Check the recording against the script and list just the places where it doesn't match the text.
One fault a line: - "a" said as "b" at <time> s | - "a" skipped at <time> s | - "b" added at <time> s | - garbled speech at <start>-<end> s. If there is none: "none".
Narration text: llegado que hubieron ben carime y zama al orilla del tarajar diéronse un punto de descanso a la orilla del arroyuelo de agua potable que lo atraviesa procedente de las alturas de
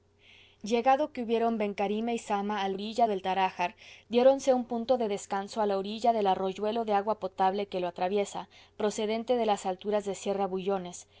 none